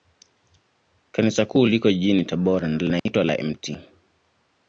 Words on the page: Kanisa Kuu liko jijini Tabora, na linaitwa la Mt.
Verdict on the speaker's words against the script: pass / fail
pass